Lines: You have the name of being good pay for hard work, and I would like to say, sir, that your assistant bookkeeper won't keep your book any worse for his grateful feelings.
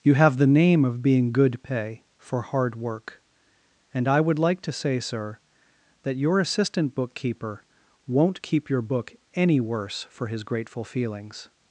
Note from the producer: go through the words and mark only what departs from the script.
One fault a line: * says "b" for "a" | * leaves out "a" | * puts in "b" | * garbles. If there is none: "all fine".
all fine